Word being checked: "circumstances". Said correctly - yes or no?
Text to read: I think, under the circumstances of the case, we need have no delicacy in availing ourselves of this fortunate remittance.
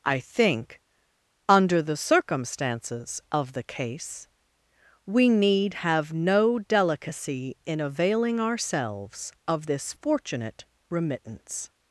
yes